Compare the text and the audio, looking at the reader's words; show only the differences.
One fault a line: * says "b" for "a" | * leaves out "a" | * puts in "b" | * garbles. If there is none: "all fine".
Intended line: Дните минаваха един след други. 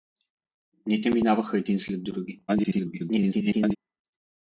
* garbles